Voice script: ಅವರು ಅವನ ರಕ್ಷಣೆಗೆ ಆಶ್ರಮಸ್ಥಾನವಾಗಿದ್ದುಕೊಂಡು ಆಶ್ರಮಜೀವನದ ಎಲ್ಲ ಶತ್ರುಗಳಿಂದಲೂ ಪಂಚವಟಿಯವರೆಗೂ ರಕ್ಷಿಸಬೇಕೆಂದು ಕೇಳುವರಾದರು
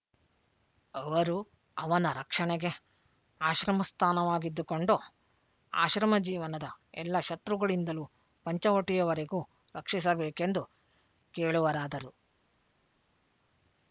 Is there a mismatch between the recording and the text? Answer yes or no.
no